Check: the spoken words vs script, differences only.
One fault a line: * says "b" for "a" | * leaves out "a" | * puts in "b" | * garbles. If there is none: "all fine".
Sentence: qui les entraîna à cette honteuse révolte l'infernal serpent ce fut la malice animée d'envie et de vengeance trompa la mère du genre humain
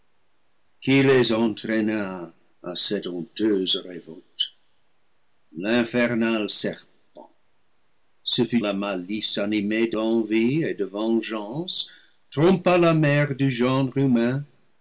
all fine